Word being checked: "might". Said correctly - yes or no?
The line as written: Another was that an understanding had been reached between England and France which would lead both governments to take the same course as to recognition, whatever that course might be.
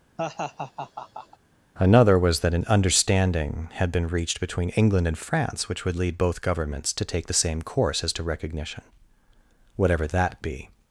no